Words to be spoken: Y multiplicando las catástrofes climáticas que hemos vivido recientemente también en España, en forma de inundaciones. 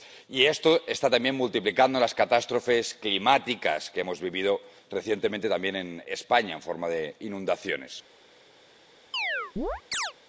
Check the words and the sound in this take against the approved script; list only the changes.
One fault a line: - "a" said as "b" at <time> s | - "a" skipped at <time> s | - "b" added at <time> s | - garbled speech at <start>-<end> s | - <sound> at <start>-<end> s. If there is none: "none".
- "esto está también" added at 0.5 s
- chirp at 9.1-10.1 s